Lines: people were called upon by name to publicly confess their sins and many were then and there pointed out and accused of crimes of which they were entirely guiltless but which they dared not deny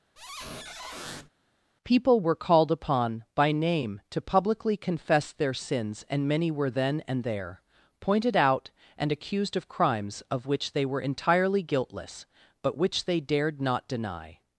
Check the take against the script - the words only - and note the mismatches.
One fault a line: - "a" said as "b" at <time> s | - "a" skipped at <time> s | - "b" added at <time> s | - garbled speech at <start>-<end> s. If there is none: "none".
none